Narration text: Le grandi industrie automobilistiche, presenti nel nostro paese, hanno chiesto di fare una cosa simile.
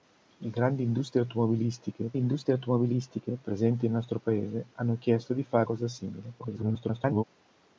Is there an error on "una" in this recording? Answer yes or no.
yes